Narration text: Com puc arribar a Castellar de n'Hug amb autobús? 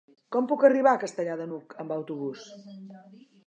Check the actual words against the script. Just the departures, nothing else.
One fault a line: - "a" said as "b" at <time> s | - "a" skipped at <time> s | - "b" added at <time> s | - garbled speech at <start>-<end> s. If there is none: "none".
none